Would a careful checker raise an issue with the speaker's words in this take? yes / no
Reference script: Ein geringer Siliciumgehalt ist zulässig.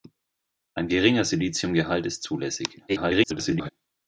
yes